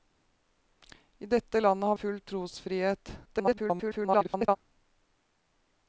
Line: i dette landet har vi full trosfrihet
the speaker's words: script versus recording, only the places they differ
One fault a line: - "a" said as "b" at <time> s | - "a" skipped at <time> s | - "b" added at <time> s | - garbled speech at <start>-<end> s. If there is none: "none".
- "vi" skipped at 1.9 s
- garbled speech at 3.2-4.6 s